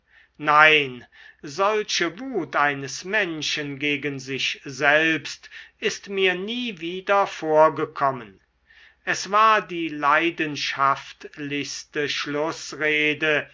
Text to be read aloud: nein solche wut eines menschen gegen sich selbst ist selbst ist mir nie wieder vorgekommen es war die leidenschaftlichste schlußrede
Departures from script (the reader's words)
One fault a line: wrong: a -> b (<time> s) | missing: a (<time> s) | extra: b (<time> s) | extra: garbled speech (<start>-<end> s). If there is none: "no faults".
missing: selbst ist (6.1 s)